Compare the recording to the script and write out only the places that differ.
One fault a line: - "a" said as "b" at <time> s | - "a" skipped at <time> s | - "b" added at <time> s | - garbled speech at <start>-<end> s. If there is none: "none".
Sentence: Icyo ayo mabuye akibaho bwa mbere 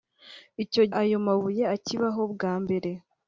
none